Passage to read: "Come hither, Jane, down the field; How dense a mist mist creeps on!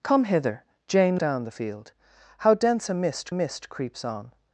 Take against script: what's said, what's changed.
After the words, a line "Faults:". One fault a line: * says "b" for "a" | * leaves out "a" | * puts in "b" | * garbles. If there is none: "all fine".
"Come hither, Jane, down the field; How dense a mist mist creeps on!
Faults:
all fine